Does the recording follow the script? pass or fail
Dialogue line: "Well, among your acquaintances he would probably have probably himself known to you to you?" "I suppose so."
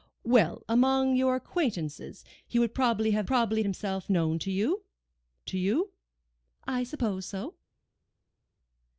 pass